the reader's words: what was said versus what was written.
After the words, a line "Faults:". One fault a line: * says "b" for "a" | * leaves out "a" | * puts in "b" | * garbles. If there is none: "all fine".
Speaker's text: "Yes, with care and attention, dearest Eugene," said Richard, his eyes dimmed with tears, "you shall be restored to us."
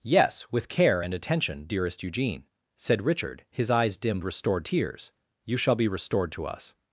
"Yes, with care and attention, dearest Eugene," said Richard, his eyes dimmed restored tears, "you shall be restored to us."
Faults:
* says "restored" for "with"